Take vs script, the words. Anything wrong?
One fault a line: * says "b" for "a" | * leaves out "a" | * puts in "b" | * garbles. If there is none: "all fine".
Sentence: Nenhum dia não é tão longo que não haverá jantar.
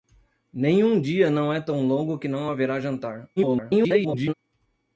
* garbles